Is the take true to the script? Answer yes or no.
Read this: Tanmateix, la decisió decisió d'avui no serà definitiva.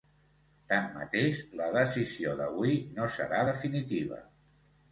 no